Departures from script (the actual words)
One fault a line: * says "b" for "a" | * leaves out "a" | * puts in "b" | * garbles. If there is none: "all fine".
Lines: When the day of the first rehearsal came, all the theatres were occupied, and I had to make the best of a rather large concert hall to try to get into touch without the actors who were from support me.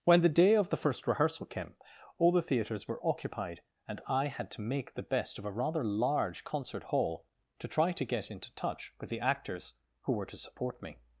* says "with" for "without"
* says "to" for "from"